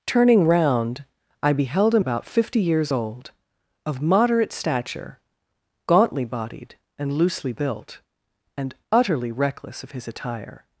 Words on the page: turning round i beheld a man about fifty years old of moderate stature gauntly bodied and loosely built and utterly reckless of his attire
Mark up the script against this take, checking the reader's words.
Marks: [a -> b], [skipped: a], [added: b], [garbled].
turning round i beheld a [skipped: man] about fifty years old of moderate stature gauntly bodied and loosely built and utterly reckless of his attire